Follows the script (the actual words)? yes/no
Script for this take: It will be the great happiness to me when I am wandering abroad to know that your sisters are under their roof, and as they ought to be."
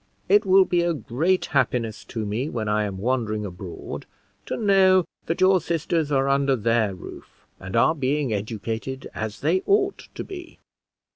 no